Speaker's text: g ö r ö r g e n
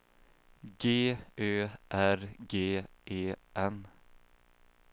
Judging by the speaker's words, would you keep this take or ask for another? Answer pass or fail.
fail